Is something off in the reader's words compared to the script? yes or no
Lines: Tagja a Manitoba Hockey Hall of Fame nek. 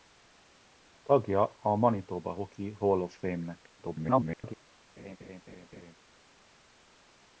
yes